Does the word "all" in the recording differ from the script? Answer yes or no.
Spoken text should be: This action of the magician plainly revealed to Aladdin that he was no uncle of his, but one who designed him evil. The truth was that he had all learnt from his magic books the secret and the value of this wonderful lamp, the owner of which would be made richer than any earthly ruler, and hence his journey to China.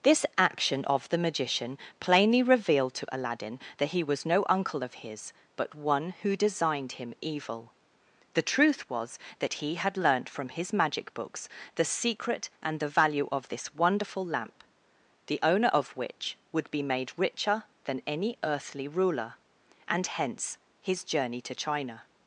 yes